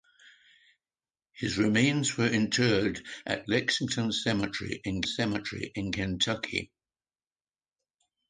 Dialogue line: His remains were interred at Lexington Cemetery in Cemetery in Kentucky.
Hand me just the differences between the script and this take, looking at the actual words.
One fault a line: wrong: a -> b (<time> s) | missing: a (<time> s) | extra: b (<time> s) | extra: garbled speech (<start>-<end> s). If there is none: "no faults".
no faults